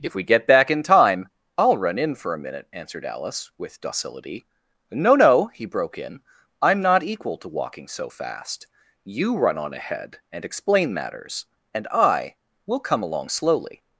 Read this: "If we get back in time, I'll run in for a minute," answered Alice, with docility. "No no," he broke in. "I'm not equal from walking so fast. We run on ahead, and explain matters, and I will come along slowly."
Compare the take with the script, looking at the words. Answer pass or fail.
fail